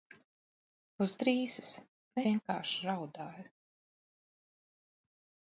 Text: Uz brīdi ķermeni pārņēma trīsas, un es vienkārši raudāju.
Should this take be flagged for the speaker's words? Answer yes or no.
yes